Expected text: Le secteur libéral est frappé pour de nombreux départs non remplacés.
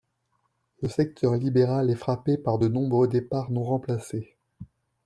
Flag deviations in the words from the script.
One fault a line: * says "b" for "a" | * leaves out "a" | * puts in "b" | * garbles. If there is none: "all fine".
* says "par" for "pour"